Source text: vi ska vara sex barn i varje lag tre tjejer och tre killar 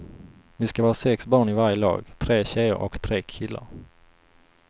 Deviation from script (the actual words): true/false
false